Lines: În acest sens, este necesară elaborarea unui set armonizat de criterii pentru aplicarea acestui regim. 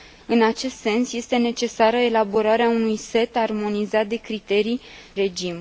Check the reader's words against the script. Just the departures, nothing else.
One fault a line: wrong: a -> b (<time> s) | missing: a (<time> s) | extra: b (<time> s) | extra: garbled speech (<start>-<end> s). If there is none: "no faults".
missing: pentru aplicarea acestui (4.8 s)